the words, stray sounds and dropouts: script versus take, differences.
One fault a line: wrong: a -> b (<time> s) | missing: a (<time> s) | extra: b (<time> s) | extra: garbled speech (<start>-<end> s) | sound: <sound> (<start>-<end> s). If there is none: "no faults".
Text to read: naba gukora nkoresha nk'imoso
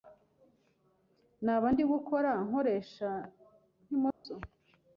extra: ndi (1.7 s)
sound: dropout (4.1-4.2 s)